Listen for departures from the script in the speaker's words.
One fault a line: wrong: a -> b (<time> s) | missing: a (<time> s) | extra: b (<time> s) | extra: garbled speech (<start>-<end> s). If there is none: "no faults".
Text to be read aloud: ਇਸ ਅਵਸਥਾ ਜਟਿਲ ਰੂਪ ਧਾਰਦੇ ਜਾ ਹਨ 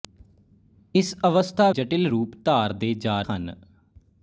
no faults